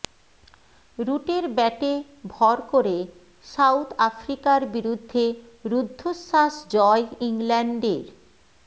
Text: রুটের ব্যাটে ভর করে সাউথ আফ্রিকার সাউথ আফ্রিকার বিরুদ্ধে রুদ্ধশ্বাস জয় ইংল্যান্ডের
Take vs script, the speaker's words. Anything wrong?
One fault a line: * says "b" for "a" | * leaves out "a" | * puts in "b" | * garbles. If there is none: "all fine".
* leaves out "সাউথ আফ্রিকার"